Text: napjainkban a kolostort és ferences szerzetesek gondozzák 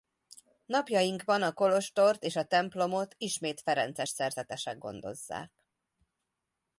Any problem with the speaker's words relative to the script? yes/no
yes